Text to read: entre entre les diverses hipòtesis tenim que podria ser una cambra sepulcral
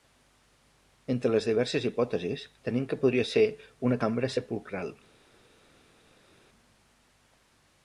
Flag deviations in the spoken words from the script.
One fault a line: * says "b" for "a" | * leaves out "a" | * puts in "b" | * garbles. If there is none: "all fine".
* leaves out "entre"